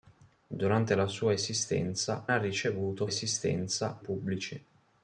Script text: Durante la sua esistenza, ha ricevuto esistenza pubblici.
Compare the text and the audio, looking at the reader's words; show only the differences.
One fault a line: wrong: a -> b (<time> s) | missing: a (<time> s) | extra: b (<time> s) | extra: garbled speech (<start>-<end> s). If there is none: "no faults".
no faults